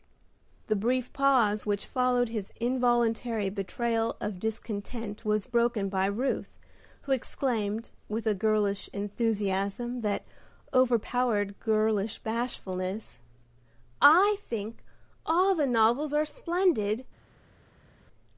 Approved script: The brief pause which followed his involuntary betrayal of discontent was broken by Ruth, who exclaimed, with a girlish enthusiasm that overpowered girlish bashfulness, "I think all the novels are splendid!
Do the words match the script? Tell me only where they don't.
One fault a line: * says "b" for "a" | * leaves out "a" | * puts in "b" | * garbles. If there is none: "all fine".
all fine